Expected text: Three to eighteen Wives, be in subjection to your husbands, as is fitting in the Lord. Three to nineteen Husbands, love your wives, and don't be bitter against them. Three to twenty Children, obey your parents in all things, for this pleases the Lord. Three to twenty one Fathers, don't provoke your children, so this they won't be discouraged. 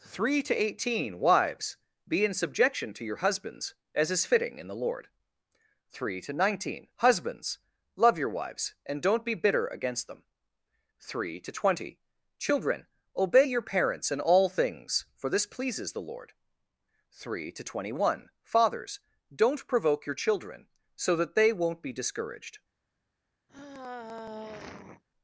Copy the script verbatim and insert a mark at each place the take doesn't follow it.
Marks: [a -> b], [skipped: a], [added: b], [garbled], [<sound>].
Three to eighteen Wives, be in subjection to your husbands, as is fitting in the Lord. Three to nineteen Husbands, love your wives, and don't be bitter against them. Three to twenty Children, obey your parents in all things, for this pleases the Lord. Three to twenty one Fathers, don't provoke your children, so [this -> that] they won't be discouraged. [sigh]